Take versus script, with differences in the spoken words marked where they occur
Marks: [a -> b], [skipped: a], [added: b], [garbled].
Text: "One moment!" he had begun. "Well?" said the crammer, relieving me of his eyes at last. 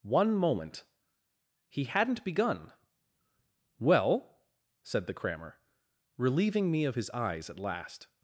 "One moment!" he [had -> hadn't] begun. "Well?" said the crammer, relieving me of his eyes at last.